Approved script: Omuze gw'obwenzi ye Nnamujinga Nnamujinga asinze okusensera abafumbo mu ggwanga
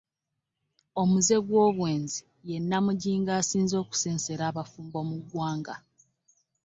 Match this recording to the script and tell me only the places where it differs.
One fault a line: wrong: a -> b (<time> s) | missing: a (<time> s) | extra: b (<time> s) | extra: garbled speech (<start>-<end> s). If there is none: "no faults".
missing: Nnamujinga (3.3 s)